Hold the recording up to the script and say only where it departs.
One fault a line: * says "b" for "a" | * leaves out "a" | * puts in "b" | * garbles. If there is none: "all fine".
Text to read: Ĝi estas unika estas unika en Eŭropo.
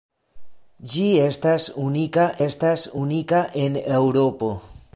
all fine